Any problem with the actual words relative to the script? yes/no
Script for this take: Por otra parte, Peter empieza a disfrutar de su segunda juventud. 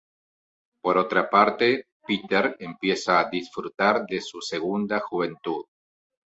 no